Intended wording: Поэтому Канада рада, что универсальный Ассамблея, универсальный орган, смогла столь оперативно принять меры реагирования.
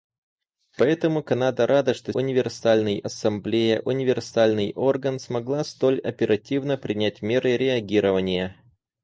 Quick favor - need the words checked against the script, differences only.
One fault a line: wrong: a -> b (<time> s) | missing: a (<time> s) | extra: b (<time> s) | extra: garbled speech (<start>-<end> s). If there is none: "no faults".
no faults